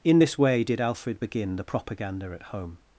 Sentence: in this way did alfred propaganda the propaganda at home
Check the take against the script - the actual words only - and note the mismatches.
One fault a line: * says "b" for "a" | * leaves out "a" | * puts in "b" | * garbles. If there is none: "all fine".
* says "begin" for "propaganda"